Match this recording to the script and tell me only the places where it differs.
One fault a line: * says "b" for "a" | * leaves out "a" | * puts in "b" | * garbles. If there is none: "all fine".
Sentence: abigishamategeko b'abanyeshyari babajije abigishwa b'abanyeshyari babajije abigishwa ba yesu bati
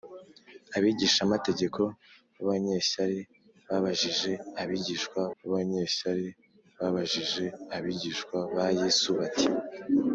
all fine